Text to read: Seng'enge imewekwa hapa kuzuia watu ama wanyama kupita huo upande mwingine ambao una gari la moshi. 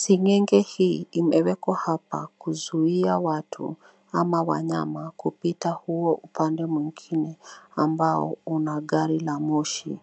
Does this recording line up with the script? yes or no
no